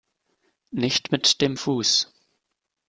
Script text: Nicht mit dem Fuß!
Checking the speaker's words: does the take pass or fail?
pass